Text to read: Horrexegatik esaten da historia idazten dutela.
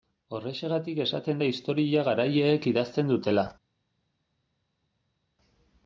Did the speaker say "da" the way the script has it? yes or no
yes